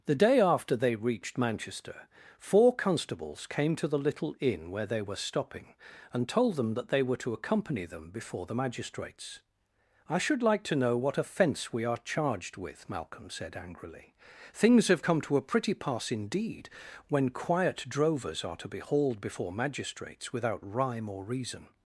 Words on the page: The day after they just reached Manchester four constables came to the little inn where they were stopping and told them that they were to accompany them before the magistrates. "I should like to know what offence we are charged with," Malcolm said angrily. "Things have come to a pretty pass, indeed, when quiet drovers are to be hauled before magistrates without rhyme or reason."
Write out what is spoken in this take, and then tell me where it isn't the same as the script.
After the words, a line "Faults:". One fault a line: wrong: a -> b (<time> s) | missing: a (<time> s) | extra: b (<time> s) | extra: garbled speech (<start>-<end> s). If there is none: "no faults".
The day after they reached Manchester four constables came to the little inn where they were stopping and told them that they were to accompany them before the magistrates. "I should like to know what offence we are charged with," Malcolm said angrily. "Things have come to a pretty pass, indeed, when quiet drovers are to be hauled before magistrates without rhyme or reason."
Faults:
missing: just (1.0 s)